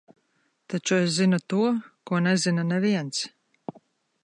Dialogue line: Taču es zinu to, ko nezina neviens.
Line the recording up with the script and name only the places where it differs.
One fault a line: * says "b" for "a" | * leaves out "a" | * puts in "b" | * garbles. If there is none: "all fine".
all fine